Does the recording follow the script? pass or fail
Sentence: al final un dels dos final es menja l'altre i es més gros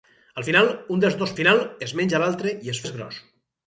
pass